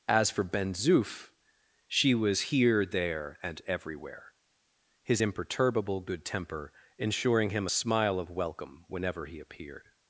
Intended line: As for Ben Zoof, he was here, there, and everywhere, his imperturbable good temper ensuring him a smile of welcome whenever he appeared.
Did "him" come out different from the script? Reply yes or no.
no